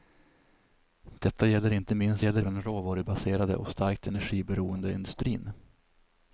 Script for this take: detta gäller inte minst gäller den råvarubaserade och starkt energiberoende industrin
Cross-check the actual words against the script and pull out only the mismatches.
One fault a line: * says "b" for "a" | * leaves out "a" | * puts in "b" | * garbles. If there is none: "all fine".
all fine